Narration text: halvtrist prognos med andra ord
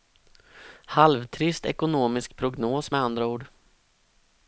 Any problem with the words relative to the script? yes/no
yes